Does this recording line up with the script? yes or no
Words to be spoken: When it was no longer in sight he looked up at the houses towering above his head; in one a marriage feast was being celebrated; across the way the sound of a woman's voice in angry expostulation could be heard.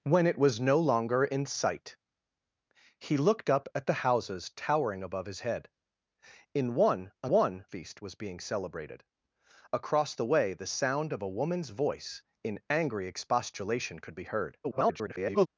no